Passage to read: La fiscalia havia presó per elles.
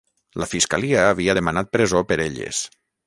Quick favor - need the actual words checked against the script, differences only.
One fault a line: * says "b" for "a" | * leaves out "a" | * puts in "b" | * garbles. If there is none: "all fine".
* puts in "demanat"